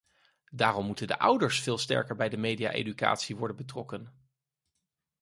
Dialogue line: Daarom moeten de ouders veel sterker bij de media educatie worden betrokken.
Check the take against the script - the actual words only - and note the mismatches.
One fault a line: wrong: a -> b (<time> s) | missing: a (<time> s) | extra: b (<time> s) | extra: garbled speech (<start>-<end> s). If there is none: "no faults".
no faults